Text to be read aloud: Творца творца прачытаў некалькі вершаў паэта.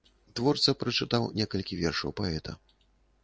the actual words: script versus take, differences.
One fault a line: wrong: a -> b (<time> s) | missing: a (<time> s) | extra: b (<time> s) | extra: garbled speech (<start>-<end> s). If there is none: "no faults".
missing: творца (0.7 s)